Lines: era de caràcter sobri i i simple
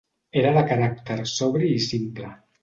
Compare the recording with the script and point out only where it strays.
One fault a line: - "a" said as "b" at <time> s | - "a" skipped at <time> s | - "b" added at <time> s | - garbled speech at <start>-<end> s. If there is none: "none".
- "i" skipped at 1.9 s